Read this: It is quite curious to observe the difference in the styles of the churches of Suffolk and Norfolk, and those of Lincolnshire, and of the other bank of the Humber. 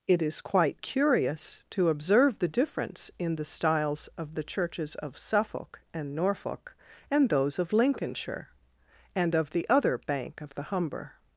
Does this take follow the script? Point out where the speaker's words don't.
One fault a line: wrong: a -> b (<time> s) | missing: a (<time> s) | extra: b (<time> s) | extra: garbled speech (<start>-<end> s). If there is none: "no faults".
no faults